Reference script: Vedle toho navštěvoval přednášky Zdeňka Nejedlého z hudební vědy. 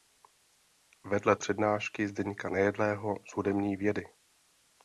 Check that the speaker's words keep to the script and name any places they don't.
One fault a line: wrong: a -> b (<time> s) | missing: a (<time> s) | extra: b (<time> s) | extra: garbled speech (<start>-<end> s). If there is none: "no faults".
missing: toho navštěvoval (1.4 s)